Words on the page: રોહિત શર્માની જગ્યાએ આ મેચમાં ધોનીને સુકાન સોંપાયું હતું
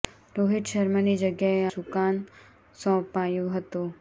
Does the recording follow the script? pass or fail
fail